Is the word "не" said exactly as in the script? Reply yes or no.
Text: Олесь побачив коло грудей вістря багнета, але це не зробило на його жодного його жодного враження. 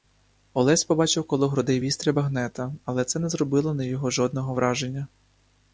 yes